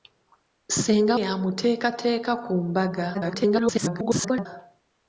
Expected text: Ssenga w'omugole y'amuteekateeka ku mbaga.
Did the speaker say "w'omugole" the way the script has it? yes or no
no